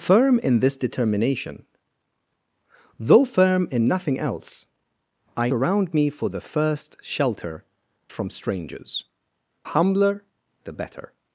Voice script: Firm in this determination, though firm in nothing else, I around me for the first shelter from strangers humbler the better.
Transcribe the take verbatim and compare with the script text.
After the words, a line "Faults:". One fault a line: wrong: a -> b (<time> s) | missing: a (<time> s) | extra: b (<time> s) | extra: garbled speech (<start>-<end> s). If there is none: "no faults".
Firm in this determination, though firm in nothing else, I around me for the first shelter from strangers humbler the better.
Faults:
no faults